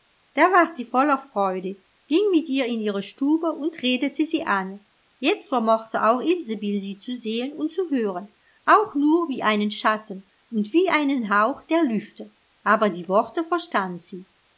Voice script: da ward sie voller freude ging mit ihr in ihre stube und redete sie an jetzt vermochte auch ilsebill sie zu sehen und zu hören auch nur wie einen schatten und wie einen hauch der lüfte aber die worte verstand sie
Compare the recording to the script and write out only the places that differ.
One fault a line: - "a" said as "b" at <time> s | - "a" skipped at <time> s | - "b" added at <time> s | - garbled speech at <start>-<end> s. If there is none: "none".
none